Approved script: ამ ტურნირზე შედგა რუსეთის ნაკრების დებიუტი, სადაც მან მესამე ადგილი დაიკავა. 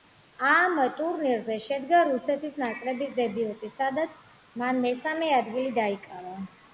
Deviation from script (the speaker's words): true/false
false